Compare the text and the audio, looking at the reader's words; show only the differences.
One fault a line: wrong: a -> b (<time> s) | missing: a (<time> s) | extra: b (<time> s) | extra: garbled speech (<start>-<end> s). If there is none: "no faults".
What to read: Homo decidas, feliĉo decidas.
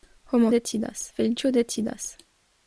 no faults